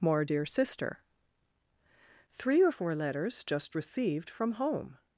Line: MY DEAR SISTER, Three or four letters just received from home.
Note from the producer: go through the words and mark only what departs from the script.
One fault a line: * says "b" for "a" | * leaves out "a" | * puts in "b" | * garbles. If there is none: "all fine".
* says "More" for "MY"